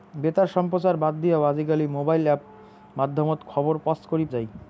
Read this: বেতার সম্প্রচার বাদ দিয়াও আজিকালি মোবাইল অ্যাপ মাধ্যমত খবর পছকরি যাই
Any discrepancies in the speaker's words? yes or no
no